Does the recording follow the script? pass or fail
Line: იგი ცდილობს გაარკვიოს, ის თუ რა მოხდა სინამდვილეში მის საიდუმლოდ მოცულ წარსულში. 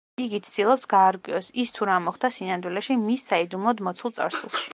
pass